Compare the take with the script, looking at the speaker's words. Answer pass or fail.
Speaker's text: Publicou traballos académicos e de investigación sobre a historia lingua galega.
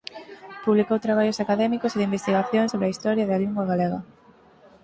fail